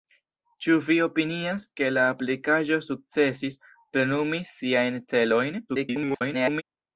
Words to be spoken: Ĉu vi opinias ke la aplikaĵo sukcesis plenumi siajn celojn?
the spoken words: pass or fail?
fail